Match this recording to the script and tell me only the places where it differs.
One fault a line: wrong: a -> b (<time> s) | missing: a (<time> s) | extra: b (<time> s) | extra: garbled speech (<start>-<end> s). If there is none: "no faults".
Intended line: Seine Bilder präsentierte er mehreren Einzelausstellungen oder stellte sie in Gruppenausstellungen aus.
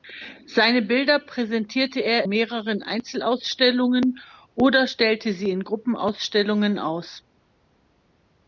no faults